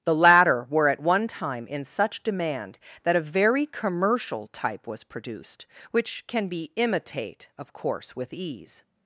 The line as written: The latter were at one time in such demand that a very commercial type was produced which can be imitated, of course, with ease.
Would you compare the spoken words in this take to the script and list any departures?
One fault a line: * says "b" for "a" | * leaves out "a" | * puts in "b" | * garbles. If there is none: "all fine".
* says "imitate" for "imitated"